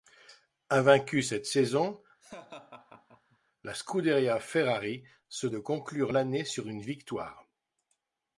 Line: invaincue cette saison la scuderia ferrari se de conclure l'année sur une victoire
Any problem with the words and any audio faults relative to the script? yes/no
yes